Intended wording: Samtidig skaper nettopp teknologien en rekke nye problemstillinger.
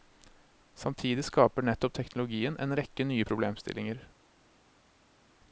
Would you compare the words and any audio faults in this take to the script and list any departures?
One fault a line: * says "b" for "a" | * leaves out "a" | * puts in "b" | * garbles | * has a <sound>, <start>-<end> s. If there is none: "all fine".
all fine